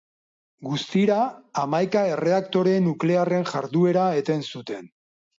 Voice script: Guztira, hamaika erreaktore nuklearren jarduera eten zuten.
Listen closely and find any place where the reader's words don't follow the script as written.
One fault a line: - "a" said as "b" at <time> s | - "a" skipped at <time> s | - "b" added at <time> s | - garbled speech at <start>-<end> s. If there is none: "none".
none